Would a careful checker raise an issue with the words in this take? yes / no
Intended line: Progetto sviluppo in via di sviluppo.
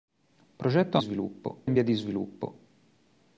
no